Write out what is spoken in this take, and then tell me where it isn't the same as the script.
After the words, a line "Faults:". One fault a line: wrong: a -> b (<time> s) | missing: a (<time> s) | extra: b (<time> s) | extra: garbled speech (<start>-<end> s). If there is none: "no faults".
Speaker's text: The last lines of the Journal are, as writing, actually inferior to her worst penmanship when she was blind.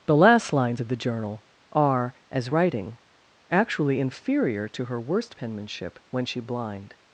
The last lines of the Journal are, as writing, actually inferior to her worst penmanship when she blind.
Faults:
missing: was (6.4 s)